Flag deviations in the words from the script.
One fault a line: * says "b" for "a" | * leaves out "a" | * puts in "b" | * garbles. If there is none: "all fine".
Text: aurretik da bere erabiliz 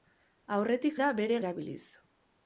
all fine